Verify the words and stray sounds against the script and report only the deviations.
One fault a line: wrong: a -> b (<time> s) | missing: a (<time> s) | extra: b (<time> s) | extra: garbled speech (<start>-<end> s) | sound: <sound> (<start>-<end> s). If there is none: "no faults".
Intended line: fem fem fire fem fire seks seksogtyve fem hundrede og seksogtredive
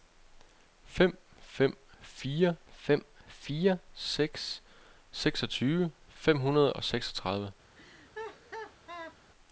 sound: laugh (7.7-9.2 s)